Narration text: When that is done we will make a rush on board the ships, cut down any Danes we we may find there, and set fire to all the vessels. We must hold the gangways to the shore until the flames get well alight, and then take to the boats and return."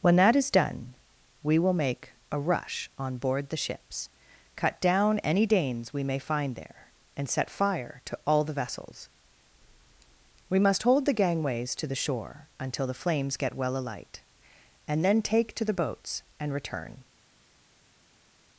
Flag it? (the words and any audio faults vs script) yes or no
yes